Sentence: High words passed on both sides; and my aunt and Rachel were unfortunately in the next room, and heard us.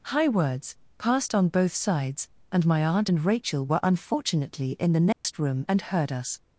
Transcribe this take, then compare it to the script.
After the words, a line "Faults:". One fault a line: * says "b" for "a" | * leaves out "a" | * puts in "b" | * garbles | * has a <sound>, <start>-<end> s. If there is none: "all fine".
High words passed on both sides; and my aunt and Rachel were unfortunately in the next room, and heard us.
Faults:
* has a dropout, 5.1-5.2 s